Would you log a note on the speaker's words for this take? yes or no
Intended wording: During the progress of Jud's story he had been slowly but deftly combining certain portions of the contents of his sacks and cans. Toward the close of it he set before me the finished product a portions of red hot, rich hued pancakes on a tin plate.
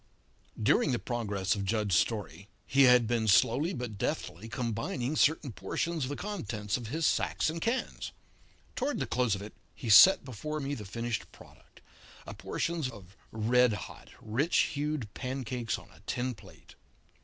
no